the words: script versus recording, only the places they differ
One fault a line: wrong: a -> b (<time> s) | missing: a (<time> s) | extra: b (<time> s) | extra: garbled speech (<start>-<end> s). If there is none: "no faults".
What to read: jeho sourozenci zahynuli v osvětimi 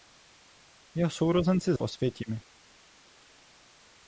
missing: zahynuli (1.7 s)